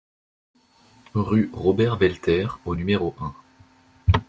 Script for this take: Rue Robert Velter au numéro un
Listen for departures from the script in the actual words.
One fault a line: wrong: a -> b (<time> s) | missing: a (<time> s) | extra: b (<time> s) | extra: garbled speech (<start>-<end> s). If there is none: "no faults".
no faults